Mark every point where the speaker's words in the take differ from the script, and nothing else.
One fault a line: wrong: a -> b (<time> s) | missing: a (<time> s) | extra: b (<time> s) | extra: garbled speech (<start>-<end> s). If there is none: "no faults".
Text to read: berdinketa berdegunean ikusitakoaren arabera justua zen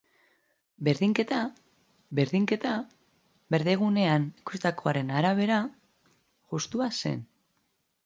extra: berdinketa (2.2 s)